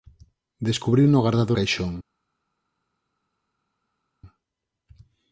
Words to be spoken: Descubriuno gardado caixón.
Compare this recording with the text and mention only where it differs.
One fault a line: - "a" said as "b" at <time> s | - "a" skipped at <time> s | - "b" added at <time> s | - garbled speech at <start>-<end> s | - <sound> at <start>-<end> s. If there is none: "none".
none